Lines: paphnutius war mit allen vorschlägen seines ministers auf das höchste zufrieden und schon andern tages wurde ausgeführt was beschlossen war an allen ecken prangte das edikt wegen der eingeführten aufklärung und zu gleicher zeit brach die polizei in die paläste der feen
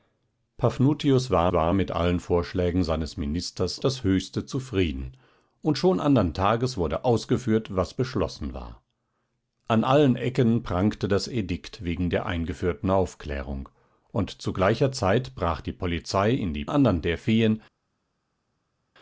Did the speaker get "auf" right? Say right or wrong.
wrong